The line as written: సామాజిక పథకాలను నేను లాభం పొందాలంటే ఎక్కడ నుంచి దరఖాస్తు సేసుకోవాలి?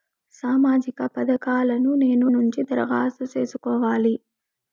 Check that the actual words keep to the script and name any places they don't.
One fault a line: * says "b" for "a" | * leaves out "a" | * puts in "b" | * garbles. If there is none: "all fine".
* leaves out "లాభం పొందాలంటే ఎక్కడ"